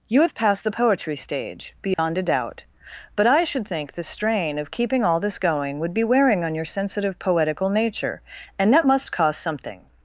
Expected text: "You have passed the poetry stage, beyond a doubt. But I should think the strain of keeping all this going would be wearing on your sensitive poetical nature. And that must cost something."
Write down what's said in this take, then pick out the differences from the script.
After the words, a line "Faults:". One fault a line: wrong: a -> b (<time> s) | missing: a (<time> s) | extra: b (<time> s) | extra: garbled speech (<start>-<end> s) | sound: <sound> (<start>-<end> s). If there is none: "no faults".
"You have passed the poetry stage, beyond a doubt. But I should think the strain of keeping all this going would be wearing on your sensitive poetical nature. And that must cost something."
Faults:
sound: dropout (1.9-2.0 s)